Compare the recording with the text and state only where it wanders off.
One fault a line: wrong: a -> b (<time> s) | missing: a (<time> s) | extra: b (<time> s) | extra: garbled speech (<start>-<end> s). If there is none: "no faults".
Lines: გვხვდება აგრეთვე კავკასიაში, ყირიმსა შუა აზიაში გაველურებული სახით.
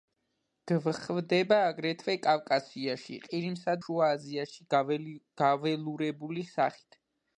no faults